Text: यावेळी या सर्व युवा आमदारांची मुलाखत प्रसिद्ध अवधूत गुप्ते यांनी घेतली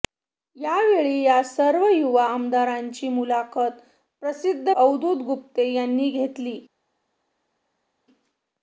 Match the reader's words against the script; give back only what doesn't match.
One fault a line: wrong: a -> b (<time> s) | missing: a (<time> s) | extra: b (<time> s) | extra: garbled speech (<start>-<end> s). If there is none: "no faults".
no faults